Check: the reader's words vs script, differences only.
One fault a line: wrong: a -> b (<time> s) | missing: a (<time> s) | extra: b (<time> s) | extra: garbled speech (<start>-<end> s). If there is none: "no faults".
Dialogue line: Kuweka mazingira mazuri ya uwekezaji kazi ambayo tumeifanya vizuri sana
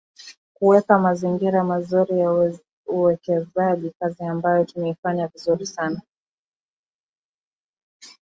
no faults